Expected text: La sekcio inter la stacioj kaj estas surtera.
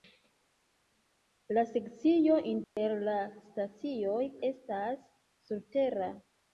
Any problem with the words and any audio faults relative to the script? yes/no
yes